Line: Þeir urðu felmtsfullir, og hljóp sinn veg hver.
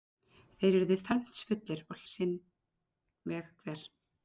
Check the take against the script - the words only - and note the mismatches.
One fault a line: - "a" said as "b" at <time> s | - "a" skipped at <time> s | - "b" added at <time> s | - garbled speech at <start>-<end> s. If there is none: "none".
- "hljóp" skipped at 2.0 s